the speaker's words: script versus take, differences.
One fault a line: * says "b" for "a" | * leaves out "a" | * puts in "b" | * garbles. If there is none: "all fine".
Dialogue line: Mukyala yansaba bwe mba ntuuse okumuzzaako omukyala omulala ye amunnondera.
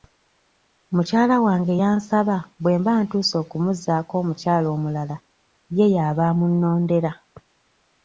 * puts in "wange"
* puts in "y'aba"